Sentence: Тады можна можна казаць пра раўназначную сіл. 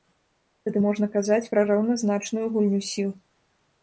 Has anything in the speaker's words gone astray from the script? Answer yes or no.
yes